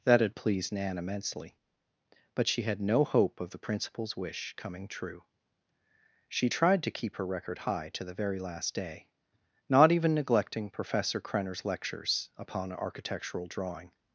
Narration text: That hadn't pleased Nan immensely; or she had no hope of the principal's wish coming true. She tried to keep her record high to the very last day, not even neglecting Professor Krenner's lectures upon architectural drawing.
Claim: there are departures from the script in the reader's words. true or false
true